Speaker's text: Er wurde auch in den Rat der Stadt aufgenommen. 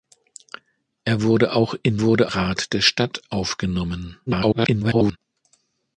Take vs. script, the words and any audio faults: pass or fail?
fail